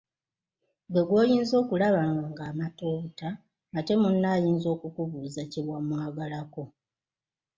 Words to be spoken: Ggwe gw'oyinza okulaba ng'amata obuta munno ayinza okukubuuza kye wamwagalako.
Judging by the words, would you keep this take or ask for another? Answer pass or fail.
fail